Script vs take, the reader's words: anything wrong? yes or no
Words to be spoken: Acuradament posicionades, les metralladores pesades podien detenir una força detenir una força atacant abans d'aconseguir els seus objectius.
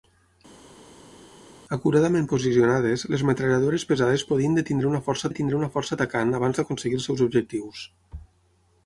no